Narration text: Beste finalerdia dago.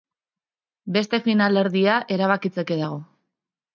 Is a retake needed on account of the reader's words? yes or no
yes